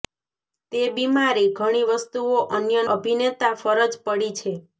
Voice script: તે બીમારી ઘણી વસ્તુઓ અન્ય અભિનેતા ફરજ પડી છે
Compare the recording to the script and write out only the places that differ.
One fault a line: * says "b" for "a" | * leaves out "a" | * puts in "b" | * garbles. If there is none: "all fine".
all fine